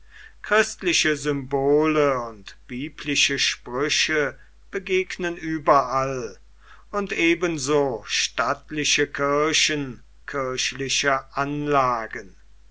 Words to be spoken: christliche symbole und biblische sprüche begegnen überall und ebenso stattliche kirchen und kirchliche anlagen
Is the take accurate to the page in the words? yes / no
no